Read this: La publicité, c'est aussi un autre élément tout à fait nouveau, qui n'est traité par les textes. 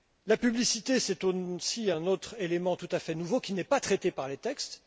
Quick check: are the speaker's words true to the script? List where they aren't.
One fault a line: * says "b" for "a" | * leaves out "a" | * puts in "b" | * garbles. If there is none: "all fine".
* puts in "pas"